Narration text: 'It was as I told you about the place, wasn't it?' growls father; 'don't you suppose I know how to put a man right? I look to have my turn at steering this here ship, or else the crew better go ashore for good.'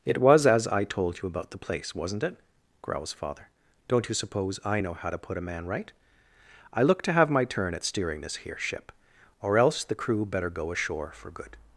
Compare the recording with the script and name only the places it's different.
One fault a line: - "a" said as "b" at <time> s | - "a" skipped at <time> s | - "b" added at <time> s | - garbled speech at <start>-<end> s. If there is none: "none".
none